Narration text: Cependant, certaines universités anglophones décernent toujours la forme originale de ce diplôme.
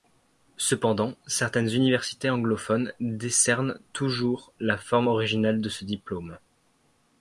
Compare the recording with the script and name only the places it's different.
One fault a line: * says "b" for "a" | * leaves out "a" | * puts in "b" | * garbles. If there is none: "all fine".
all fine